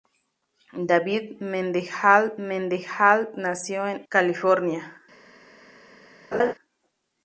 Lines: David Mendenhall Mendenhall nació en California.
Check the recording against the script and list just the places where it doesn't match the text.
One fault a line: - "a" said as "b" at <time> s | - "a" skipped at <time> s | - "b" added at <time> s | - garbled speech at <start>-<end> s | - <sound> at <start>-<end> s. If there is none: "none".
- laugh at 6.3-6.5 s